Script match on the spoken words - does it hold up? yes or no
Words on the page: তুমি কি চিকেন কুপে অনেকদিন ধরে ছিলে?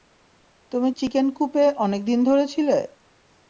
no